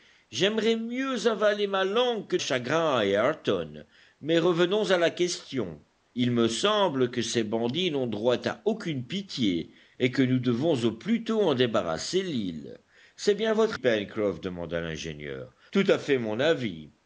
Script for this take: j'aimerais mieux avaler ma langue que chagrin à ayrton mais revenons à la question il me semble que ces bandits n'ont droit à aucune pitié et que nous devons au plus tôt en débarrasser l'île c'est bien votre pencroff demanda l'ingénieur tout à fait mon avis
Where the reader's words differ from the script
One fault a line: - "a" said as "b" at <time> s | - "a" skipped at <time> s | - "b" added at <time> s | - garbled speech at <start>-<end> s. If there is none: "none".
none